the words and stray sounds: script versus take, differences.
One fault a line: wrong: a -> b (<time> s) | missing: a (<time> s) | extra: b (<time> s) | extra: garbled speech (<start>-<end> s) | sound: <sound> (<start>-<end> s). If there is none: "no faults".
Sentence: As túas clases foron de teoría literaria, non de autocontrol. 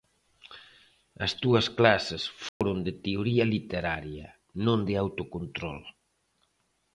sound: dropout (2.5-2.6 s)